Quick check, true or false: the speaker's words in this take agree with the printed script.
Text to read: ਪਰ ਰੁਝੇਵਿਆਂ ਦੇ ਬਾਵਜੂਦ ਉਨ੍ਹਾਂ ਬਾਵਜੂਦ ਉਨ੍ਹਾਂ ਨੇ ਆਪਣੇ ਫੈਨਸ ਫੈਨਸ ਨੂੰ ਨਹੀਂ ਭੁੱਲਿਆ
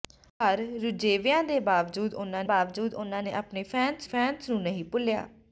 true